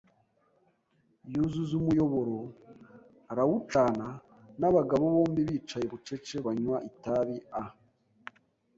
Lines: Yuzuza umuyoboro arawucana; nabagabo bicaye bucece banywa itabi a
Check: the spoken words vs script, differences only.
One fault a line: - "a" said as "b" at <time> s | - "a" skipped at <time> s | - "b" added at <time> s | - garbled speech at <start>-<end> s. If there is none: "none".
- "bombi" added at 5.2 s